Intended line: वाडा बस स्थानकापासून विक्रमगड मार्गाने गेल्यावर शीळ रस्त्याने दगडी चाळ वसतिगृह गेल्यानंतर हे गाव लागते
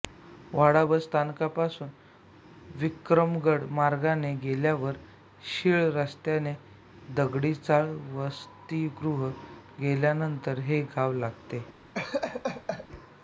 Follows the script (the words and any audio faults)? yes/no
no